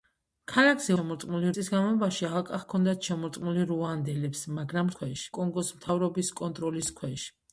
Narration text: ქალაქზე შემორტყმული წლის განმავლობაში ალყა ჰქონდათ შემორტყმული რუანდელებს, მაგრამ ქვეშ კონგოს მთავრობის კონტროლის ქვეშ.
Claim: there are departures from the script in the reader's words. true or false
false